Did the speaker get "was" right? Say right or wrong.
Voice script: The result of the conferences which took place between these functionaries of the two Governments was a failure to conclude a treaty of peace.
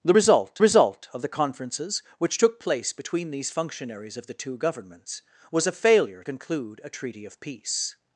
right